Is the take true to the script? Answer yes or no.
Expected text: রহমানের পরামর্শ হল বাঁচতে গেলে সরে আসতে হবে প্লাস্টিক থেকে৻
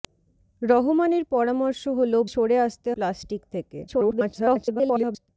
no